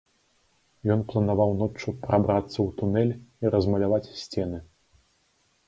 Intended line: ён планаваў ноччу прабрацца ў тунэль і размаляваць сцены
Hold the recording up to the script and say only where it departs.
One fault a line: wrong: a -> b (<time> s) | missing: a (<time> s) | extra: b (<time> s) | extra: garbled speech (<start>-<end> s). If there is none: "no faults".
no faults